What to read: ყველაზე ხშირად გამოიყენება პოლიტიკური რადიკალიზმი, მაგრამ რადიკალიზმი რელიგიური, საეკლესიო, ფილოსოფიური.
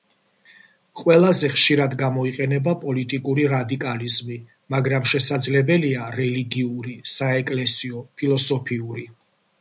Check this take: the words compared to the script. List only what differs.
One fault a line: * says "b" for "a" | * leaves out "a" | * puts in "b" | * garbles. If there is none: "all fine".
* says "შესაძლებელია" for "რადიკალიზმი"